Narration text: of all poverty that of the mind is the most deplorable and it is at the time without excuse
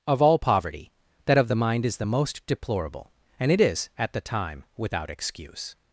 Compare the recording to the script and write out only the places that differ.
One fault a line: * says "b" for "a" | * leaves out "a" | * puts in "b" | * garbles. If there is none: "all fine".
all fine